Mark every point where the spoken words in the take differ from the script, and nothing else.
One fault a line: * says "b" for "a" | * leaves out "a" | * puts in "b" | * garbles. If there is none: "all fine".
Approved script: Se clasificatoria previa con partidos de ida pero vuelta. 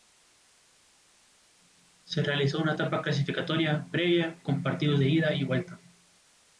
* puts in "realizó una etapa"
* says "y" for "pero"